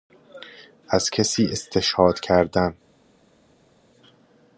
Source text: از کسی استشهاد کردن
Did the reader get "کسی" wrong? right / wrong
right